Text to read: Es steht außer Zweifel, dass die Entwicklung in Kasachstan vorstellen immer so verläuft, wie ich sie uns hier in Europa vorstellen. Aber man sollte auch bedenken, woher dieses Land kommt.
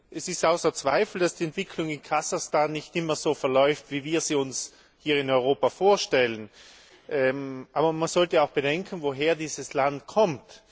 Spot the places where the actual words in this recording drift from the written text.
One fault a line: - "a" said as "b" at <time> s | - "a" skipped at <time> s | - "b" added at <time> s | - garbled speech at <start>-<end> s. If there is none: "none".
- "vorstellen" said as "nicht" at 2.7 s
- "ich" said as "wir" at 4.0 s